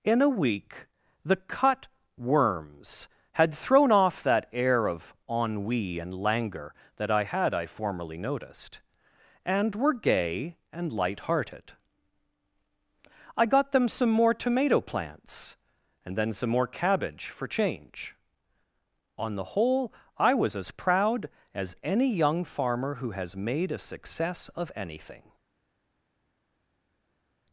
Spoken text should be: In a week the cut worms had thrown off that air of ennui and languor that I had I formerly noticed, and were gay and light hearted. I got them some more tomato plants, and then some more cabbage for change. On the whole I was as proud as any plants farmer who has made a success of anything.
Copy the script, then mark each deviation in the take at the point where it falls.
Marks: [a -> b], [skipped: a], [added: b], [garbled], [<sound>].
In a week the cut worms had thrown off that air of ennui and languor that I had I formerly noticed, and were gay and light hearted. I got them some more tomato plants, and then some more cabbage for change. On the whole I was as proud as any [plants -> young] farmer who has made a success of anything.